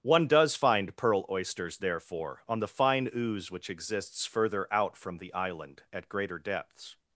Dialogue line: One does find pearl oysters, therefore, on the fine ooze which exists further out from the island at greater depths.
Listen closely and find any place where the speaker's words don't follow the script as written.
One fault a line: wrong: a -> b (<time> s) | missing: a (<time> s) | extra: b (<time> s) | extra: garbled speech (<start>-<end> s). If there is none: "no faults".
no faults